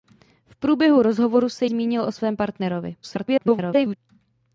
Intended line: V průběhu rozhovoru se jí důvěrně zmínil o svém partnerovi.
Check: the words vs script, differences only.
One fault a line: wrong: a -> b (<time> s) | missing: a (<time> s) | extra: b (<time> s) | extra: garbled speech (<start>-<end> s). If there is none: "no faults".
missing: jí důvěrně (1.6 s)
extra: garbled speech (3.0-4.0 s)